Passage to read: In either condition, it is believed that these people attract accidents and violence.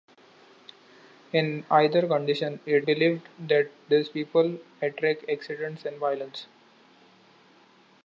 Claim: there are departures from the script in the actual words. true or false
true